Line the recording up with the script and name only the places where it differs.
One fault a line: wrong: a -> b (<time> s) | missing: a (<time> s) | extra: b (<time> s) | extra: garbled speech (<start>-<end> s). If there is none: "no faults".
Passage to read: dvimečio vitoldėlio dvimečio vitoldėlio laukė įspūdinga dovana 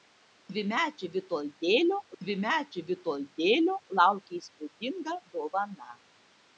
no faults